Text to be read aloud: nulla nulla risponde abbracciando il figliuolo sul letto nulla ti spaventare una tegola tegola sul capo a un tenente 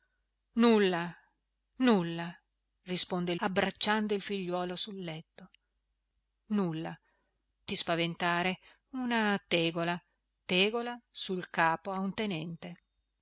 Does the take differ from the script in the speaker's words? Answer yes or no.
no